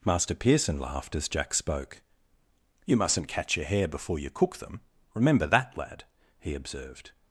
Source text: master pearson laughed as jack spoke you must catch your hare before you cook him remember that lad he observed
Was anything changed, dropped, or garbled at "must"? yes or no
yes